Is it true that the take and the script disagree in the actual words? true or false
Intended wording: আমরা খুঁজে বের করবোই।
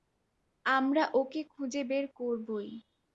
true